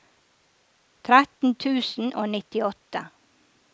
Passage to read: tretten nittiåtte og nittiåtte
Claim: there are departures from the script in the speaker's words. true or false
true